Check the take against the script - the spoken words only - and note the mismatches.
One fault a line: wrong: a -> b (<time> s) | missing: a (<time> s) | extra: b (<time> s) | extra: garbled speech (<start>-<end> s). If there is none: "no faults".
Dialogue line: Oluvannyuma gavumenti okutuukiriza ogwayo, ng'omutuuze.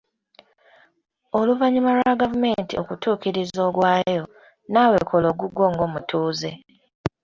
extra: lwa (2.0 s)
extra: naawe kola ogugwo (4.7 s)